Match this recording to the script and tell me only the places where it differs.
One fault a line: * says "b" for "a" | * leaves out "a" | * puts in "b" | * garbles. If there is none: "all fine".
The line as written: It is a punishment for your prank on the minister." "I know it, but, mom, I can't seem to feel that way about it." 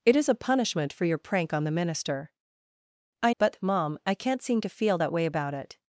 * leaves out "know it"